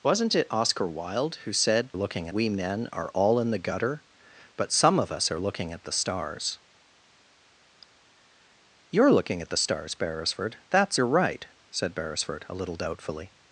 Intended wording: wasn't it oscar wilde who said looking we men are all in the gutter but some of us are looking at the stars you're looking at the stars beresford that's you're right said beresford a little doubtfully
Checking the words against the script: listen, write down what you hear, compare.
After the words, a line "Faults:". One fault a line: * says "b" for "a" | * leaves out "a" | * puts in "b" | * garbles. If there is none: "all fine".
wasn't it oscar wilde who said looking we men are all in the gutter but some of us are looking at the stars you're looking at the stars beresford that's you're right said beresford a little doubtfully
Faults:
all fine